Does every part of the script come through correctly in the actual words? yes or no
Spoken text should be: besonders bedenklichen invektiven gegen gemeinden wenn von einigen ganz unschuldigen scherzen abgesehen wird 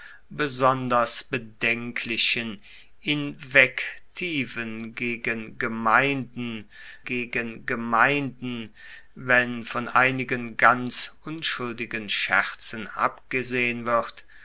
no